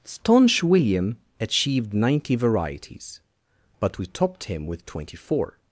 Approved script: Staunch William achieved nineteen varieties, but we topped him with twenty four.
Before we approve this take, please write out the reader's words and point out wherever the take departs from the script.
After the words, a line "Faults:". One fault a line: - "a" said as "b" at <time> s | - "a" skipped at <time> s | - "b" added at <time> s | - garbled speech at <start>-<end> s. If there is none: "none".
Staunch William achieved ninety varieties, but we topped him with twenty four.
Faults:
- "nineteen" said as "ninety" at 1.9 s